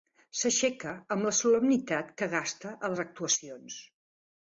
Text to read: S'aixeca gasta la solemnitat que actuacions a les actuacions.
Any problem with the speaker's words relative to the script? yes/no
yes